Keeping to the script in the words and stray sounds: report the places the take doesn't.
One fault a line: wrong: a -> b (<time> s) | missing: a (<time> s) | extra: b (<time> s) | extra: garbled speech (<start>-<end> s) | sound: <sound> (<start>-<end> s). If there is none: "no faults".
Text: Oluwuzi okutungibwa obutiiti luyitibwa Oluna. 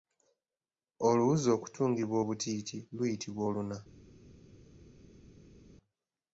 no faults